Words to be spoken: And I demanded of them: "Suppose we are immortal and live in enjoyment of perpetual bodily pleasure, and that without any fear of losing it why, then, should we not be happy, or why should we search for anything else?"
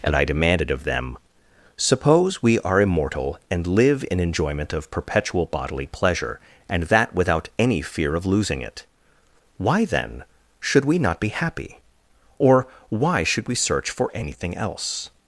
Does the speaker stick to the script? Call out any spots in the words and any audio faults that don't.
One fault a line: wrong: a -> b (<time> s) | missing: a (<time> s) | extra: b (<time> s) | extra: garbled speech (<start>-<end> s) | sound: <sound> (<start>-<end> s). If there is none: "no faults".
no faults